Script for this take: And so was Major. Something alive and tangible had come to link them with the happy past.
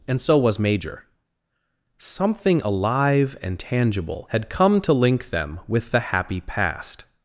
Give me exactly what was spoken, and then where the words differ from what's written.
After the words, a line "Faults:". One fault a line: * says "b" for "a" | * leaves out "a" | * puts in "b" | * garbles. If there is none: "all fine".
And so was Major. Something alive and tangible had come to link them with the happy past.
Faults:
all fine